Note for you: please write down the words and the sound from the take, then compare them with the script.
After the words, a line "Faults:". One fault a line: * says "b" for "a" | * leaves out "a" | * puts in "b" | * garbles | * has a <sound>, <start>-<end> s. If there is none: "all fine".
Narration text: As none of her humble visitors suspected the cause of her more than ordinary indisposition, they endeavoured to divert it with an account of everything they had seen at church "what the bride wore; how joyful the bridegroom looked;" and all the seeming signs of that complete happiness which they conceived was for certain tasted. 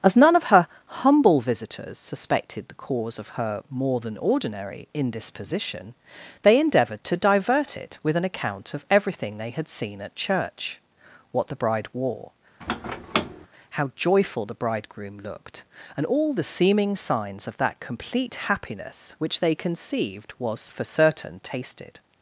As none of her humble visitors suspected the cause of her more than ordinary indisposition, they endeavoured to divert it with an account of everything they had seen at church "what the bride wore; how joyful the bridegroom looked;" and all the seeming signs of that complete happiness which they conceived was for certain tasted.
Faults:
* has a squeak, 12.6-13.5 s